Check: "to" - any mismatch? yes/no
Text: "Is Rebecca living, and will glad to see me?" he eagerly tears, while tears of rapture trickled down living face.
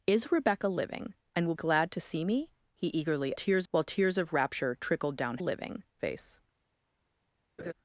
no